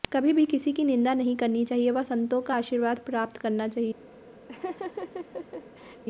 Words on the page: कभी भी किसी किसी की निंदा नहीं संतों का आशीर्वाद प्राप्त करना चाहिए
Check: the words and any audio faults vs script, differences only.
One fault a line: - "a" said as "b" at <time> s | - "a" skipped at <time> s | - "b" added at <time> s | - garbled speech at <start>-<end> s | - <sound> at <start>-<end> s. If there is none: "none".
- "किसी" skipped at 0.7 s
- "करनी चाहिए व" added at 1.4 s
- laugh at 4.5-6.0 s